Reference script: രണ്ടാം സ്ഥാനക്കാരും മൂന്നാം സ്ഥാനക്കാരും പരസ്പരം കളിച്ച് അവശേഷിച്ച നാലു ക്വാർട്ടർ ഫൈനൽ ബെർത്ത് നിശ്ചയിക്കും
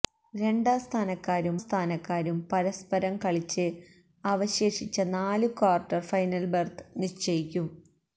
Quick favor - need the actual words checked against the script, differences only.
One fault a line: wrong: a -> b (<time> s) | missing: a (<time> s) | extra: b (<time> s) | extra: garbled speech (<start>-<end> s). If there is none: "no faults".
missing: മൂന്നാം (1.6 s)